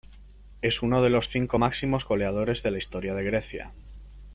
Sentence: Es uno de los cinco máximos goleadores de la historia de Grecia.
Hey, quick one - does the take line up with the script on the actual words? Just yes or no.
yes